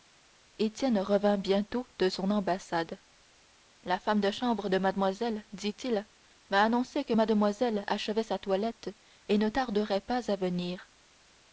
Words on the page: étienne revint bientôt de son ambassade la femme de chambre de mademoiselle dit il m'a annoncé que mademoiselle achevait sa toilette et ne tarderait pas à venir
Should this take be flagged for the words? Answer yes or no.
no